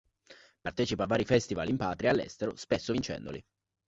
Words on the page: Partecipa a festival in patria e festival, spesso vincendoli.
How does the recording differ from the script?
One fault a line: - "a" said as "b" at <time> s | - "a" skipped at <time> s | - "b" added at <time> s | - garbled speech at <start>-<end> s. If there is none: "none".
- "vari" added at 1.1 s
- "festival" said as "all'estero" at 2.1 s